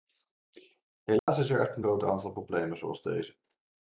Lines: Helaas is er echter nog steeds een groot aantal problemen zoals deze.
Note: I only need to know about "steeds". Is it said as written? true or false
false